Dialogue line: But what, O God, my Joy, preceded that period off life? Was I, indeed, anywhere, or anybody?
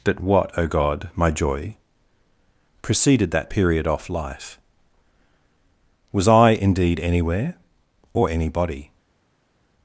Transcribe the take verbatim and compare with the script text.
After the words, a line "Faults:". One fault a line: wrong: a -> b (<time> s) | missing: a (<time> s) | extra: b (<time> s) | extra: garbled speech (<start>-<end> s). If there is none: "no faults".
But what, O God, my Joy, preceded that period off life? Was I, indeed, anywhere, or anybody?
Faults:
no faults